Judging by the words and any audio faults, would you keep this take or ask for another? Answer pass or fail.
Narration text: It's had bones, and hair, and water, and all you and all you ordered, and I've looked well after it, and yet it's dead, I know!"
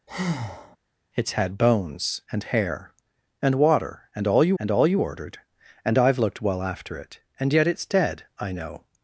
fail